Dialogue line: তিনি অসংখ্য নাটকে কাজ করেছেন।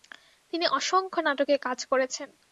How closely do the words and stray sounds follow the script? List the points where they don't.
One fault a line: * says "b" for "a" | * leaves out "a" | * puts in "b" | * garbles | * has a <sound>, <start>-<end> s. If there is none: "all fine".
all fine